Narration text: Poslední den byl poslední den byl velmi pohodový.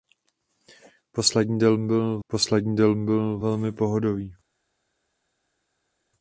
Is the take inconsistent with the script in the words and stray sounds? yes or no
no